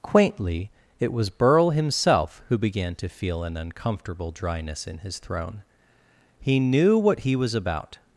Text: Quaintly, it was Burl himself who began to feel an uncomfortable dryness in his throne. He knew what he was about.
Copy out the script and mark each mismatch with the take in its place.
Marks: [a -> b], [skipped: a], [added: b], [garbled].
Quaintly, it was Burl himself who began to feel an uncomfortable dryness in his throne. He knew what he was about.